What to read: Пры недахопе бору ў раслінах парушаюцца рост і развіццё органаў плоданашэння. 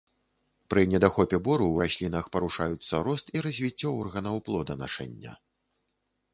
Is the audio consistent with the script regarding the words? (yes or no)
yes